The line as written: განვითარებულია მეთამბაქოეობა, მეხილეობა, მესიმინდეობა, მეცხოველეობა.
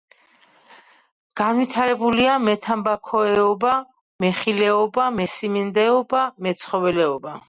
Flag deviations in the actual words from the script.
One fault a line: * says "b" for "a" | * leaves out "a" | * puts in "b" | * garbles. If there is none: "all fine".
all fine